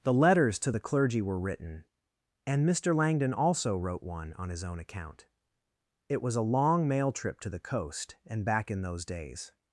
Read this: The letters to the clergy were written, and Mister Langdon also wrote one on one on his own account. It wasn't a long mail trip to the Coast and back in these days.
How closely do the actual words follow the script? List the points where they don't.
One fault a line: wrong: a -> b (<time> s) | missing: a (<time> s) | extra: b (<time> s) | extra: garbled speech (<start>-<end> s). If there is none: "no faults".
missing: one on (4.5 s)
wrong: wasn't -> was (6.2 s)
wrong: these -> those (8.8 s)